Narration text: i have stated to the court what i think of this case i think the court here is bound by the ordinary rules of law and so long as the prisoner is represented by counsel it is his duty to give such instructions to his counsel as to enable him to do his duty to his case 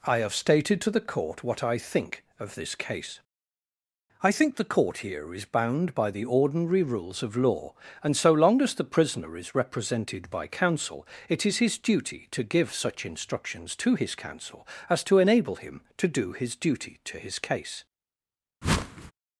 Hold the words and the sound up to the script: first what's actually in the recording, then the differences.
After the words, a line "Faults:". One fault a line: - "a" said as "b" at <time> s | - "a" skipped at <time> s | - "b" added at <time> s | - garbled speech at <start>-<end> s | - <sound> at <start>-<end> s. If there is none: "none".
i have stated to the court what i think of this case i think the court here is bound by the ordinary rules of law and so long as the prisoner is represented by counsel it is his duty to give such instructions to his counsel as to enable him to do his duty to his case
Faults:
- whoosh at 18.6-19.1 s